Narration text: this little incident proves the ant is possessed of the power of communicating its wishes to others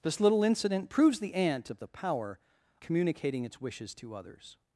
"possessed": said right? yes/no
no